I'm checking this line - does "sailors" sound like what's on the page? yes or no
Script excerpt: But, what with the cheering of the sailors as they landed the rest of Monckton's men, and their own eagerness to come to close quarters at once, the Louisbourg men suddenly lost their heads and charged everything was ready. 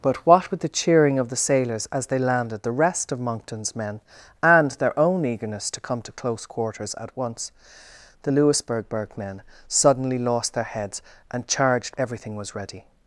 yes